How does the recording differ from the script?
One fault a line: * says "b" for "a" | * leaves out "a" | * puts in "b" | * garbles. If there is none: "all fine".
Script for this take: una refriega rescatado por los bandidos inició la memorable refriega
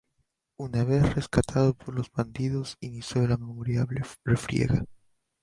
* says "vez" for "refriega"